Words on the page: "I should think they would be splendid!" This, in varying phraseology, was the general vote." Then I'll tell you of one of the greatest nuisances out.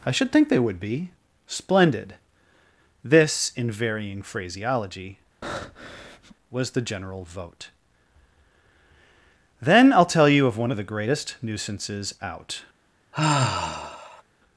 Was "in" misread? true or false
false